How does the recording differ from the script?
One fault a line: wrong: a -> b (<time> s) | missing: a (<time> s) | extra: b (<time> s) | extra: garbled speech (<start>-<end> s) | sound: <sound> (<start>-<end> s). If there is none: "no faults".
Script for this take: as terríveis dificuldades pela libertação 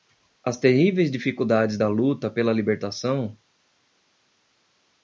extra: da luta (1.7 s)